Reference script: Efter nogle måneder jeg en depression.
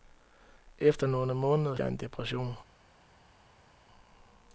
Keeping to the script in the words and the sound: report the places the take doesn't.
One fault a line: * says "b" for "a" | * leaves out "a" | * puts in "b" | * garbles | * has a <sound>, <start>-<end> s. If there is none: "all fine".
all fine